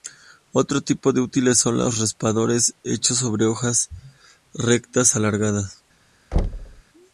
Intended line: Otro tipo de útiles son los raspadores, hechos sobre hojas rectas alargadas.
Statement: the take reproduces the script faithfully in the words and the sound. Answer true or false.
false